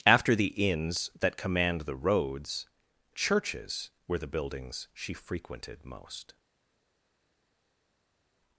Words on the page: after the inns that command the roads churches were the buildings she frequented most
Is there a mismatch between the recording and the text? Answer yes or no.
no